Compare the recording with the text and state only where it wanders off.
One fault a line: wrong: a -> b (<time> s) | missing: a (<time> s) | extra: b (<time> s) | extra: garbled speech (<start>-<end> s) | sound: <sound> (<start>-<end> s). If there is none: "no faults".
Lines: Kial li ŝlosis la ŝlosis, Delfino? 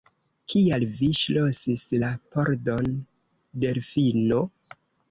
wrong: li -> vi (1.0 s)
wrong: ŝlosis -> pordon (2.4 s)